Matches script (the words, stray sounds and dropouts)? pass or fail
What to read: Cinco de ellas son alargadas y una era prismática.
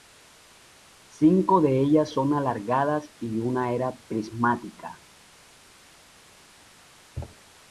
pass